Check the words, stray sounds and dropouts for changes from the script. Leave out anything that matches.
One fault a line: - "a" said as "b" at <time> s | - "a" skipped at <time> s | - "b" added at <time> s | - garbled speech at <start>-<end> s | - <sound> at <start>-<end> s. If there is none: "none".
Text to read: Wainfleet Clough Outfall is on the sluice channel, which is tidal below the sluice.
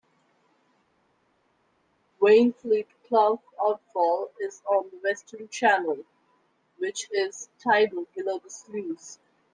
- "sluice" said as "western" at 5.0 s